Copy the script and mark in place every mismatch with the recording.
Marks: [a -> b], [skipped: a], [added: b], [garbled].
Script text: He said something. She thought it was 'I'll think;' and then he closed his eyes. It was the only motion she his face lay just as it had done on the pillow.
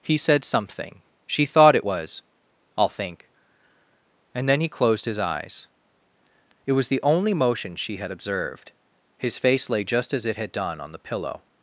He said something. She thought it was 'I'll think;' and then he closed his eyes. It was the only motion she [added: had observed] his face lay just as it had done on the pillow.